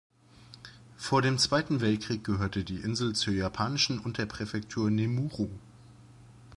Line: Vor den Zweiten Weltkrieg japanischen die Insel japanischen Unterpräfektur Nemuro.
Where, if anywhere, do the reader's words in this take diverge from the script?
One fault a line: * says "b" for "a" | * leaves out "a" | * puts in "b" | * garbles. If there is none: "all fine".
* says "dem" for "den"
* says "gehörte" for "japanischen"
* puts in "zur"